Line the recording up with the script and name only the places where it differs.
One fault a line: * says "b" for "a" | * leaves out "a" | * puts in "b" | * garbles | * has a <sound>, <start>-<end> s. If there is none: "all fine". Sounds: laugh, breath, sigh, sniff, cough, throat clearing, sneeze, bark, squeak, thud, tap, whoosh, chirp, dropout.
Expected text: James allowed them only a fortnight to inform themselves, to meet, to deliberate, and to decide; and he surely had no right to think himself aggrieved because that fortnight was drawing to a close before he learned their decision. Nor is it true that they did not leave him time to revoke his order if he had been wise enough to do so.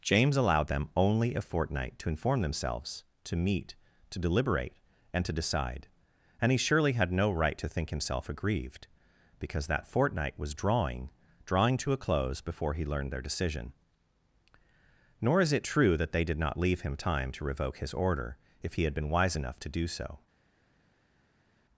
* puts in "drawing"